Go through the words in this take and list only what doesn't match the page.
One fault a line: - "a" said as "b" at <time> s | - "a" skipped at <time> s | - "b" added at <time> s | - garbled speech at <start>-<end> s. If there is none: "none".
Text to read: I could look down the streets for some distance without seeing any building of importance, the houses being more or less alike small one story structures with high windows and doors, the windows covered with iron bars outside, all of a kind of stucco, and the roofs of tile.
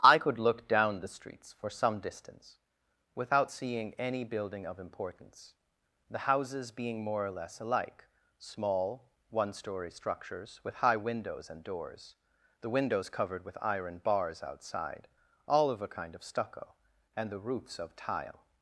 none